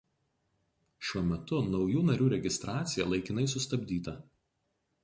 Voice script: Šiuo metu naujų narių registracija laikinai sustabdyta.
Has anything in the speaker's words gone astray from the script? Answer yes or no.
no